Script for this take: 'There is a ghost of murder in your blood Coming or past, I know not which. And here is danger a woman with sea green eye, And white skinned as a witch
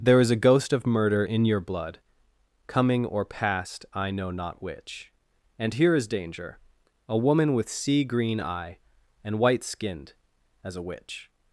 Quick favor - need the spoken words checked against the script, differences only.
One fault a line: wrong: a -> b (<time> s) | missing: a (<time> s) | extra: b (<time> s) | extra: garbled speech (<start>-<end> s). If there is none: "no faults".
no faults